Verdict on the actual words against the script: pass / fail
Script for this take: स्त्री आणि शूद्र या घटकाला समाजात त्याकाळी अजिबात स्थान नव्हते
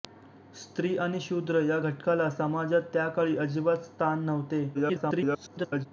fail